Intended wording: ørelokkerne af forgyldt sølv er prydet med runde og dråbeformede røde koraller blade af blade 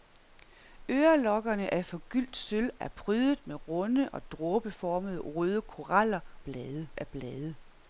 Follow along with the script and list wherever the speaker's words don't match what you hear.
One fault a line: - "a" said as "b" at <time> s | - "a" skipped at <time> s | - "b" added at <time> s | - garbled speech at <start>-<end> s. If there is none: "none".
none